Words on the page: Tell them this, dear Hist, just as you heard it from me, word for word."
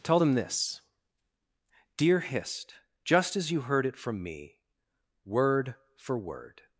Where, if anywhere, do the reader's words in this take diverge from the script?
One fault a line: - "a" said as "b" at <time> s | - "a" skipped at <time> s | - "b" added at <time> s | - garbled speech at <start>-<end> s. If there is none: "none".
none